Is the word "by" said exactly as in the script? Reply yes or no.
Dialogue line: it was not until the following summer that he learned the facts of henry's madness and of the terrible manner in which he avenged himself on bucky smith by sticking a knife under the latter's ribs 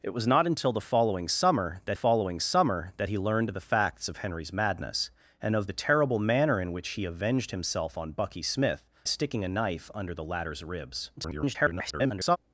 no